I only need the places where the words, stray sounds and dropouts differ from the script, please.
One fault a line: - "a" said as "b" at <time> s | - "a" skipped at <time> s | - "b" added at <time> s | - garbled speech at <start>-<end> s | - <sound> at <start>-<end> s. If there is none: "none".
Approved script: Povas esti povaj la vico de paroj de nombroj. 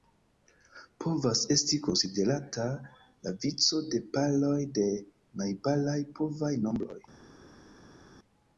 - "povaj" said as "konsiderata" at 1.9 s
- "najbaraj povaj" added at 5.4 s